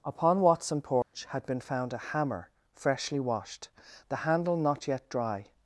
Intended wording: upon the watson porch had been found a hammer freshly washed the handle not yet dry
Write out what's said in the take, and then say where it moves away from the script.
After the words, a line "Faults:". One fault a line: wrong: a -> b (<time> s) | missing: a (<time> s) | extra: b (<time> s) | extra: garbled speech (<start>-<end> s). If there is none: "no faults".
upon watson porch had been found a hammer freshly washed the handle not yet dry
Faults:
missing: the (0.4 s)